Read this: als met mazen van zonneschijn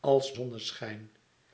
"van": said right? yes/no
no